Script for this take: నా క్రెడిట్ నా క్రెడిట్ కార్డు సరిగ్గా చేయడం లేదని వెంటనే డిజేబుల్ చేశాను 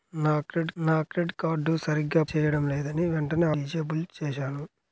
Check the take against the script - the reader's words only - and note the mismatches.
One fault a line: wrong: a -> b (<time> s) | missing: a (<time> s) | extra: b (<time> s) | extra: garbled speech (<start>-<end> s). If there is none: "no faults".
no faults